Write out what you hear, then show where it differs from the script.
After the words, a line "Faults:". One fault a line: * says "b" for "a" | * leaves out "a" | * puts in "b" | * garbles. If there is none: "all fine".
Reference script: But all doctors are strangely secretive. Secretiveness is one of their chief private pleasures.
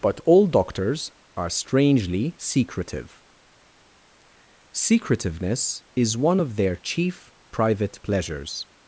But all doctors are strangely secretive. Secretiveness is one of their chief private pleasures.
Faults:
all fine